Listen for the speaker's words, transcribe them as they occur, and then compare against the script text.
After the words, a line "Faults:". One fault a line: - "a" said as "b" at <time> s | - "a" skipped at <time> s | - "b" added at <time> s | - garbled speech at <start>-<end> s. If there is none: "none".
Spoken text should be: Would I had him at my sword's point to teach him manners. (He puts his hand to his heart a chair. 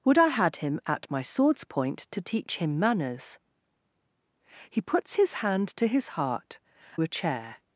Would I had him at my sword's point to teach him manners. (He puts his hand to his heart a chair.
Faults:
none